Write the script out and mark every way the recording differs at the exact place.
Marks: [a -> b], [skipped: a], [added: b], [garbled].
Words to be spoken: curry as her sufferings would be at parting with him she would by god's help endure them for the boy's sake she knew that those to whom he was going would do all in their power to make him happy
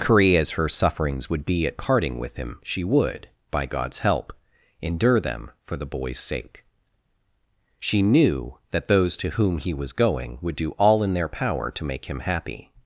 curry as her sufferings would be at parting with him she would by god's help endure them for the boy's sake she knew that those to whom he was going would do all in their power to make him happy